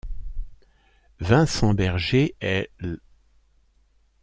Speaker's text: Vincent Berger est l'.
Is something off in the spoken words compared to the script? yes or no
no